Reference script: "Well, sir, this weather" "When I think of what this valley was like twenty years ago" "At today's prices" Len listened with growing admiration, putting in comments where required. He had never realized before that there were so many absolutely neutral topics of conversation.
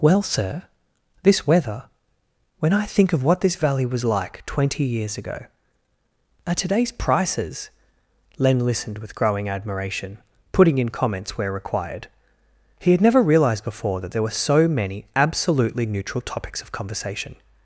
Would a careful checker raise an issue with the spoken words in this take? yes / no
no